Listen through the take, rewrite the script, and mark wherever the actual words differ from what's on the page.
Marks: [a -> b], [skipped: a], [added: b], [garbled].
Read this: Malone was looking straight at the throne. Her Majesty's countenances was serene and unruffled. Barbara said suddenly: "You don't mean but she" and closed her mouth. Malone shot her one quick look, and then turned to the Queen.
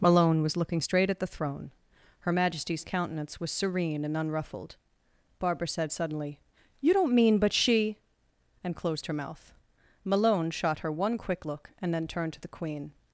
Malone was looking straight at the throne. Her Majesty's [countenances -> countenance] was serene and unruffled. Barbara said suddenly: "You don't mean but she" and closed her mouth. Malone shot her one quick look, and then turned to the Queen.